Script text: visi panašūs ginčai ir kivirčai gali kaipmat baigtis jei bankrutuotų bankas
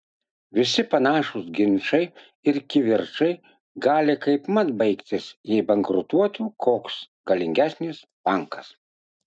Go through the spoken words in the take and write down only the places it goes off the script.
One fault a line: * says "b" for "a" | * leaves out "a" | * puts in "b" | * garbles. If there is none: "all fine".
* puts in "koks galingesnis"